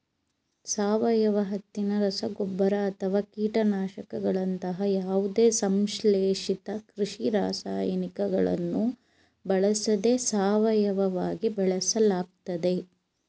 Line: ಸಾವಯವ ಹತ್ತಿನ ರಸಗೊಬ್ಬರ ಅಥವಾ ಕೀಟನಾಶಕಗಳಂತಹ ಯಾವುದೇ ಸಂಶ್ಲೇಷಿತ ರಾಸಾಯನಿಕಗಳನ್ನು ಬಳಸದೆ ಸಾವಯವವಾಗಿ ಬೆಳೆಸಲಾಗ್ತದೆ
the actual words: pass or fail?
fail